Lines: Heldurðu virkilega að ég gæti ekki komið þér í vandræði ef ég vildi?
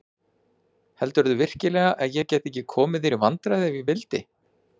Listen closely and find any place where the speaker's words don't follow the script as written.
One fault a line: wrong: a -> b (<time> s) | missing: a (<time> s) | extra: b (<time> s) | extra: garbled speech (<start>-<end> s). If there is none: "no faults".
no faults